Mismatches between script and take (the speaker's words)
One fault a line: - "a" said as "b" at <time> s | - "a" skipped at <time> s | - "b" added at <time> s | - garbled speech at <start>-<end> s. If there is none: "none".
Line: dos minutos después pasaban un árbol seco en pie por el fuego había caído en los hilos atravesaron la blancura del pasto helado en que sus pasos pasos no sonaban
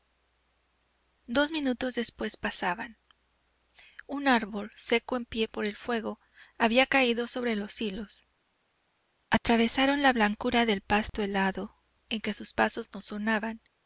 - "en" said as "sobre" at 7.3 s
- "pasos" skipped at 12.9 s